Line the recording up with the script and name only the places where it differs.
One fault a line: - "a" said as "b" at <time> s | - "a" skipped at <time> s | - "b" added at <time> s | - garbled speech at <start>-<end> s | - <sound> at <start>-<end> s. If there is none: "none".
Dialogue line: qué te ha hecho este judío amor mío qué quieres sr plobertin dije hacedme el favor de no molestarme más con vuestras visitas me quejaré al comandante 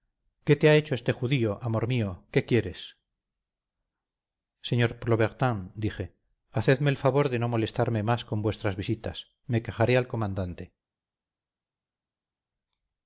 none